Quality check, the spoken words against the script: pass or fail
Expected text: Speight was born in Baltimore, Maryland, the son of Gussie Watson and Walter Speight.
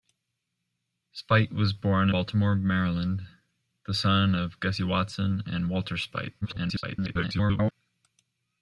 fail